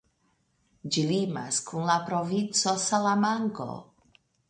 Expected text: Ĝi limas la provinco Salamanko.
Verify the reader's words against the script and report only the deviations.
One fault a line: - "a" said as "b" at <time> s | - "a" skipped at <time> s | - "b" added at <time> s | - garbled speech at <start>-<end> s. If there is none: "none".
- "kun" added at 1.7 s